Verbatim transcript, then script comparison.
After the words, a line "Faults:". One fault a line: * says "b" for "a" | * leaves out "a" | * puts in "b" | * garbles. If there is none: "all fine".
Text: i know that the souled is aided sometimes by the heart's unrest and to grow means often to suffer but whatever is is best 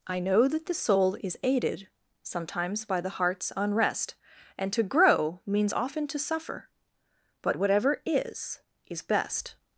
i know that the soul is aided sometimes by the heart's unrest and to grow means often to suffer but whatever is is best
Faults:
* says "soul" for "souled"